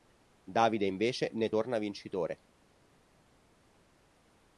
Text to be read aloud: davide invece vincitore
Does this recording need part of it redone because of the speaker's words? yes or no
yes